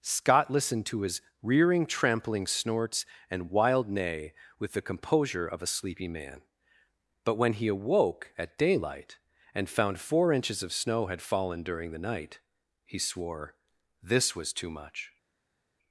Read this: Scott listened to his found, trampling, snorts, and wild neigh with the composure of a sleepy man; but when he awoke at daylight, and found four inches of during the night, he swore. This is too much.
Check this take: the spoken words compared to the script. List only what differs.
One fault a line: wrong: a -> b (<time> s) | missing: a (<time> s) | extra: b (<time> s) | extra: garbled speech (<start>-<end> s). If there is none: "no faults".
wrong: found -> rearing (1.4 s)
extra: snow had fallen (10.7 s)
wrong: is -> was (14.3 s)